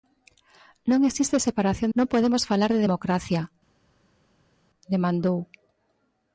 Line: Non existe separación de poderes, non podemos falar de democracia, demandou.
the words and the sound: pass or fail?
fail